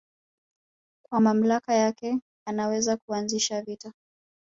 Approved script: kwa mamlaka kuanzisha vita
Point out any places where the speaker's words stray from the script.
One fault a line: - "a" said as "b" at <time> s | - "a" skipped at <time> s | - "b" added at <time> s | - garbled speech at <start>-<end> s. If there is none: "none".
- "yake anaweza" added at 1.7 s